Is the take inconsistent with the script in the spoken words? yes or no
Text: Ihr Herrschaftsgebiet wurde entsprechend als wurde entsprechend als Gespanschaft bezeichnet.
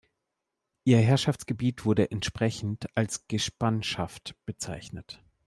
yes